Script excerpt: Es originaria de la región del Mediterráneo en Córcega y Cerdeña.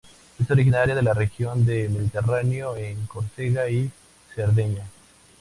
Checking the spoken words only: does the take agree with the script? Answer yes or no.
yes